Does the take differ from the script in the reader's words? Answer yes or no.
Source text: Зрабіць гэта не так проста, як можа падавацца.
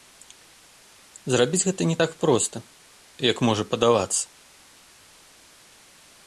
no